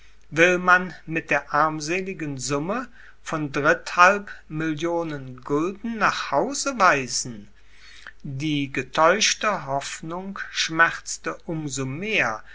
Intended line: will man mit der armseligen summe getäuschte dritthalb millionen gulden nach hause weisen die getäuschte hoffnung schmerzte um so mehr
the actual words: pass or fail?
fail